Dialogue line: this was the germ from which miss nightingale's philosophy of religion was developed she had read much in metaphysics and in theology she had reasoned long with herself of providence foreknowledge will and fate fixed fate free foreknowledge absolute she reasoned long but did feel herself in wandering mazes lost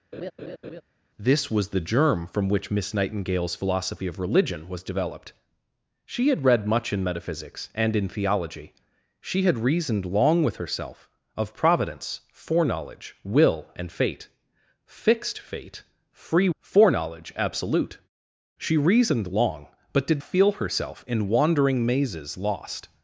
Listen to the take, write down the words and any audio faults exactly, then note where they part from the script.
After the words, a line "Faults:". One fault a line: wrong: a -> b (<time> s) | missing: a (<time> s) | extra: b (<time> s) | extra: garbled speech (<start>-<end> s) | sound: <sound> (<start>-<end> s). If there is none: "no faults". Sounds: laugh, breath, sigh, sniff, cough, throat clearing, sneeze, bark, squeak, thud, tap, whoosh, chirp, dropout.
this was the germ from which miss nightingale's philosophy of religion was developed she had read much in metaphysics and in theology she had reasoned long with herself of providence foreknowledge will and fate fixed fate free foreknowledge absolute she reasoned long but did feel herself in wandering mazes lost
Faults:
sound: laugh (0.1-0.8 s)